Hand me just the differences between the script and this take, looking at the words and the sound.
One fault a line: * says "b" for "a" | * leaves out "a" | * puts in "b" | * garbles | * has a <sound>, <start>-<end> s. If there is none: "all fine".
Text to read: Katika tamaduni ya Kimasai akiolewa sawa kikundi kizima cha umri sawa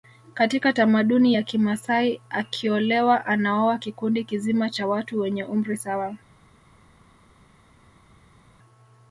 * says "anaoa" for "sawa"
* puts in "watu wenye"